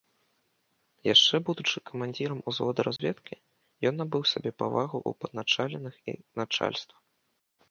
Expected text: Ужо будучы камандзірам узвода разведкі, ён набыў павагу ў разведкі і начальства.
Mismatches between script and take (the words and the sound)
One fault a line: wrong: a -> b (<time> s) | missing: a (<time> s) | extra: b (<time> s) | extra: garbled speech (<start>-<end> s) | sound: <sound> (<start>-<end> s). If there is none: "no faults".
wrong: Ужо -> Яшчэ (1.1 s)
sound: dropout (3.0-3.0 s)
extra: сабе (4.3 s)
wrong: разведкі -> падначаленых (5.3 s)